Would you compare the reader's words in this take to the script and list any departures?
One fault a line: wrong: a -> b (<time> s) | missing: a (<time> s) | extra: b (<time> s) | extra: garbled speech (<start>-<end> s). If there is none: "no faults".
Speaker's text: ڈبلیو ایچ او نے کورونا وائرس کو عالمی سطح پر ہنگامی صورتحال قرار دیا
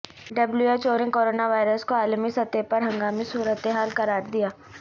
no faults